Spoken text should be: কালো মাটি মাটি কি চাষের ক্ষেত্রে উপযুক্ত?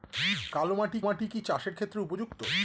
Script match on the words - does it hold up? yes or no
yes